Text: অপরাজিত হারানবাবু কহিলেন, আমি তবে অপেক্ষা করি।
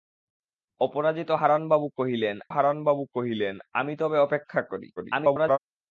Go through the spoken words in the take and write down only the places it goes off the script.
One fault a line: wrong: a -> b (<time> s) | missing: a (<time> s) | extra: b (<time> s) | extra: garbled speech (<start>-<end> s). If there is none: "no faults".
extra: হারানবাবু কহিলেন (2.5 s)
extra: garbled speech (5.0-5.6 s)